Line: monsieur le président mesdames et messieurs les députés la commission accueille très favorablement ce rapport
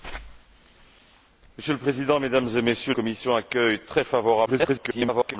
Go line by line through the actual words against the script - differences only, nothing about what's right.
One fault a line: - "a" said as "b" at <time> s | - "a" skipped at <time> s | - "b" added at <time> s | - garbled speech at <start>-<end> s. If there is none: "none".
- "les députés la" skipped at 2.9 s
- garbled speech at 4.5-5.4 s